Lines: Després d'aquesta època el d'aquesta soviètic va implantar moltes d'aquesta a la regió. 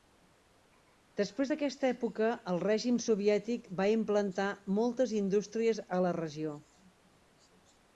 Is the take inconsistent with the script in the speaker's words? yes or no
yes